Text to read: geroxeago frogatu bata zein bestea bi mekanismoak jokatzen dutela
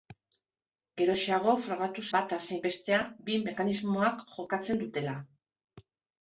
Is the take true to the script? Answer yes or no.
yes